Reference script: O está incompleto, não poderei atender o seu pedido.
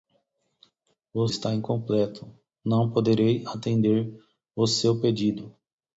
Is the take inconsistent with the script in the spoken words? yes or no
no